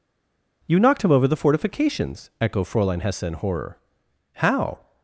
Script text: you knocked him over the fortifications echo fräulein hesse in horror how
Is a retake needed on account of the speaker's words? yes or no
no